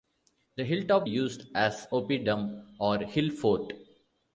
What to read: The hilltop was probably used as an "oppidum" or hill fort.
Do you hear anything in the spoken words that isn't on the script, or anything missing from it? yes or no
yes